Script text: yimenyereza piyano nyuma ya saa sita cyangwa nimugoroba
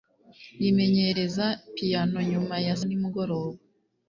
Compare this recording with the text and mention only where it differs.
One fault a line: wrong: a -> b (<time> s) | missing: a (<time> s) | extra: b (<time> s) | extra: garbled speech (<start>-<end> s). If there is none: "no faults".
missing: saa sita cyangwa (2.8 s)